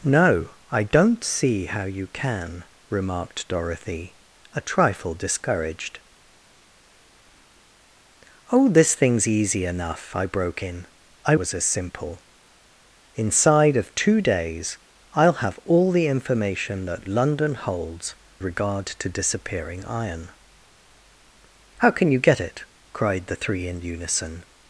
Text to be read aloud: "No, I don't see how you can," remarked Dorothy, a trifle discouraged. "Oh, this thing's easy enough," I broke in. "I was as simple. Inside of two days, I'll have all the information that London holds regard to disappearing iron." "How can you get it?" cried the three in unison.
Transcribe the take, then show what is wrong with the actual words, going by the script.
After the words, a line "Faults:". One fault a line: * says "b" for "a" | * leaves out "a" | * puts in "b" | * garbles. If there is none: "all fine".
"No, I don't see how you can," remarked Dorothy, a trifle discouraged. "Oh, this thing's easy enough," I broke in. "I was as simple. Inside of two days, I'll have all the information that London holds regard to disappearing iron." "How can you get it?" cried the three in unison.
Faults:
all fine